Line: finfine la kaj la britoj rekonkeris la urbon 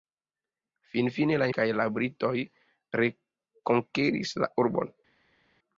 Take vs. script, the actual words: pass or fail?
pass